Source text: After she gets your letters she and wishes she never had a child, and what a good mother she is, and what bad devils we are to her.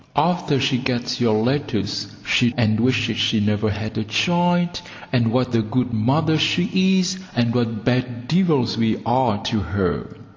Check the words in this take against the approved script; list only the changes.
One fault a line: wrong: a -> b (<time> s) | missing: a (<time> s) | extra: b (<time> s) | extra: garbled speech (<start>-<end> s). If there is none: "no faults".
no faults